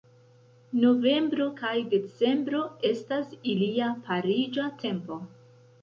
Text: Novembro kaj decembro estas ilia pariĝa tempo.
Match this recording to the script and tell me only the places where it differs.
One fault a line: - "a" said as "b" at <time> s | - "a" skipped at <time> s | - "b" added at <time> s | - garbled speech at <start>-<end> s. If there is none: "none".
none